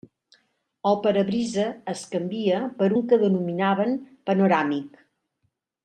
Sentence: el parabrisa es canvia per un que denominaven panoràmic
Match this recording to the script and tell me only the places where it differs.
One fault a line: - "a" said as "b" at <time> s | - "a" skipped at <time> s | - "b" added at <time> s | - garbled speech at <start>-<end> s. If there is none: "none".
none